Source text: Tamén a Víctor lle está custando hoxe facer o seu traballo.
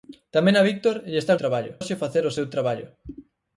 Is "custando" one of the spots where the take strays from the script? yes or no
yes